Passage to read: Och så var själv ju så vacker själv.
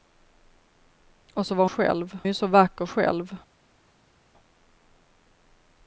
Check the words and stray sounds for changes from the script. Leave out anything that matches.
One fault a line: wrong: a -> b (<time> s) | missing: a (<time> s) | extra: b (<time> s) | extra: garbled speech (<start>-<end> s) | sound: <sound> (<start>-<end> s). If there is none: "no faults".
no faults